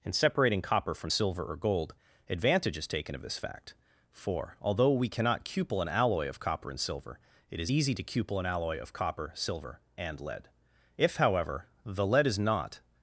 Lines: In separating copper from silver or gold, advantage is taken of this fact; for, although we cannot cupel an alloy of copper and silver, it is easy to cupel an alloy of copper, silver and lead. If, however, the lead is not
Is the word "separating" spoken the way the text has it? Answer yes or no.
yes